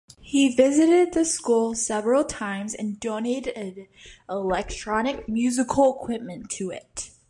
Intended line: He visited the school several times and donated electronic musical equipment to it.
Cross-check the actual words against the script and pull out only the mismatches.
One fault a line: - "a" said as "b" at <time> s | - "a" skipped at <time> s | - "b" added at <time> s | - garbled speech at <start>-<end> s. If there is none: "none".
none